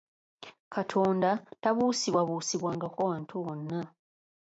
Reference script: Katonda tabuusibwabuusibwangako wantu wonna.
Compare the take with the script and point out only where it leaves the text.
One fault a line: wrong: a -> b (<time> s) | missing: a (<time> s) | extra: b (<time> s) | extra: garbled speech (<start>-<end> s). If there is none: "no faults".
no faults